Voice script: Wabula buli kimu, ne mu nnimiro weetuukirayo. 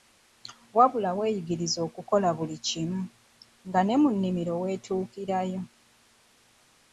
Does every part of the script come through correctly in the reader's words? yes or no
no